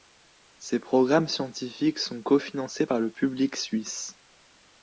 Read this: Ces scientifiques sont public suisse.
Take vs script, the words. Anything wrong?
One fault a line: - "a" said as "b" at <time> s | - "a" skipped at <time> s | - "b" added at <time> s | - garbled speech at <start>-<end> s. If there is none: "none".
- "programmes" added at 0.8 s
- "cofinancés par le" added at 2.2 s